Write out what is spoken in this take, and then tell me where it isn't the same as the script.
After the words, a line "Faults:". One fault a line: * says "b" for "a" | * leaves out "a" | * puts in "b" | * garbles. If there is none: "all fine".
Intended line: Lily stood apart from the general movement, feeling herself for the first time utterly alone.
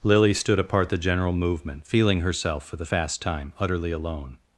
Lily stood apart the general movement, feeling herself for the fast time utterly alone.
Faults:
* leaves out "from"
* says "fast" for "first"